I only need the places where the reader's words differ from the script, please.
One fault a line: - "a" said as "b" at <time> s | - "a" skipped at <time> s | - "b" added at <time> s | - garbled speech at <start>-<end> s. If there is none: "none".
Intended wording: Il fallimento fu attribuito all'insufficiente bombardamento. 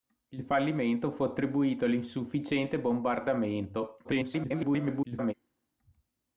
- garbled speech at 4.0-5.3 s